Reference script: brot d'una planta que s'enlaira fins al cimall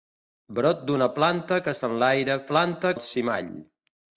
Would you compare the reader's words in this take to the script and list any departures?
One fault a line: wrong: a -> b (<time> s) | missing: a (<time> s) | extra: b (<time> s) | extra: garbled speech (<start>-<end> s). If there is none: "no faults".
wrong: fins -> planta (2.5 s)